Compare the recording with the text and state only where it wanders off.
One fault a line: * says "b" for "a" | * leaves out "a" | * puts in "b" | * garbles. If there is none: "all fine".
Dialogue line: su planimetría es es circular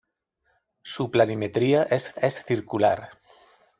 all fine